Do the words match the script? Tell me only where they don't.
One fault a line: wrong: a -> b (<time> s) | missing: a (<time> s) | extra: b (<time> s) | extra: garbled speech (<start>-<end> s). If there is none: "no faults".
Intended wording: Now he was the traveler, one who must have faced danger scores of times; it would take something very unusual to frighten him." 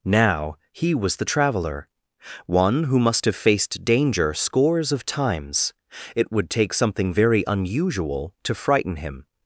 no faults